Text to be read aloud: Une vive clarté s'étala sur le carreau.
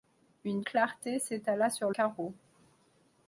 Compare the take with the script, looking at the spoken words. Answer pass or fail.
fail